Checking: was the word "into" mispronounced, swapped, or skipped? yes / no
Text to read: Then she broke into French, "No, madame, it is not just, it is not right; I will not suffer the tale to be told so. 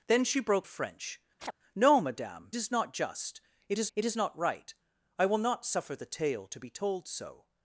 yes